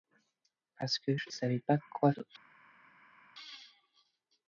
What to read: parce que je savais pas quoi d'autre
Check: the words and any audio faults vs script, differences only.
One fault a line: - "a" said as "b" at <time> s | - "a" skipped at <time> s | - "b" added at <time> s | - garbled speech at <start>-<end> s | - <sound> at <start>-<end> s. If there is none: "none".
none